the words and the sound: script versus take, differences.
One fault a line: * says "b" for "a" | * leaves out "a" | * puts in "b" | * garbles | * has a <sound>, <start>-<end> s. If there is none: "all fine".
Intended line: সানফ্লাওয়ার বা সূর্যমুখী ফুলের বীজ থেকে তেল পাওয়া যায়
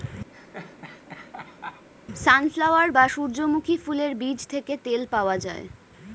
* has a laugh, 0.3-1.9 s